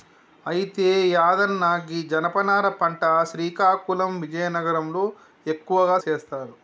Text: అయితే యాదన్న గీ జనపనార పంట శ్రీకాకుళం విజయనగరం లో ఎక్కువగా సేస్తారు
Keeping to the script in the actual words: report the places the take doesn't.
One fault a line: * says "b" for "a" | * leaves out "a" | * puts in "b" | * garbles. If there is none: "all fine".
all fine